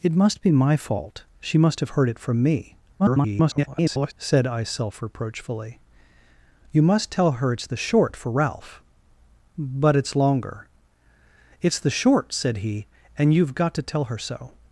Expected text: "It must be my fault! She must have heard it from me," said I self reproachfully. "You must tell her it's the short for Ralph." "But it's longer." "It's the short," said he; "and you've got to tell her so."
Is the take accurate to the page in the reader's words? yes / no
no